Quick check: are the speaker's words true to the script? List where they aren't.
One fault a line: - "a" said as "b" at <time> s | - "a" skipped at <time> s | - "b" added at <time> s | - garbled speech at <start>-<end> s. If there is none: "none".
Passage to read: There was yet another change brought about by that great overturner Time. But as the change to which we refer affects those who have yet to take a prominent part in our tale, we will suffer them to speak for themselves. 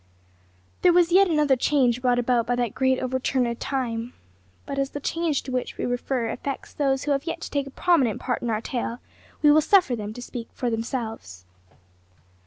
none